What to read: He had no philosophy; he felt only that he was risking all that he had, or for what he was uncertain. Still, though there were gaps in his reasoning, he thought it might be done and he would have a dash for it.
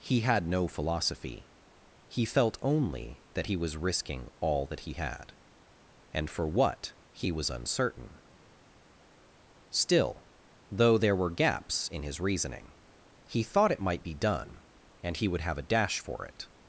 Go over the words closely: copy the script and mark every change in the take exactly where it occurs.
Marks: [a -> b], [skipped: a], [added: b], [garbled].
He had no philosophy; he felt only that he was risking all that he had, [or -> and] for what he was uncertain. Still, though there were gaps in his reasoning, he thought it might be done and he would have a dash for it.